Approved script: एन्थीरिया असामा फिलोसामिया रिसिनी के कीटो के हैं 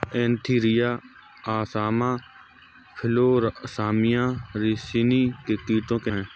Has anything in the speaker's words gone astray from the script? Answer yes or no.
no